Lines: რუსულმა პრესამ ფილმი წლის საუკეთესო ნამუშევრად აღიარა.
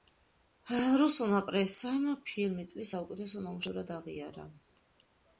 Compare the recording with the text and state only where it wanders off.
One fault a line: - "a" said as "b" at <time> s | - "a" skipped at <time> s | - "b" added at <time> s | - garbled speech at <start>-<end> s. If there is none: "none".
none